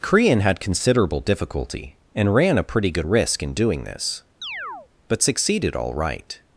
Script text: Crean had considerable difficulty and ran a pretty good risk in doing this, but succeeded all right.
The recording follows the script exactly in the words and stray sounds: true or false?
false